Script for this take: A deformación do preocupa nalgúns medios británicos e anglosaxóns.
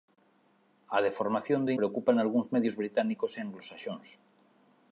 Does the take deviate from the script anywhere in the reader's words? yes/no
no